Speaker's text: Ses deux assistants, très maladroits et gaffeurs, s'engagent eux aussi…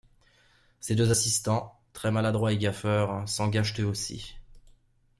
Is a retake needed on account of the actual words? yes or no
no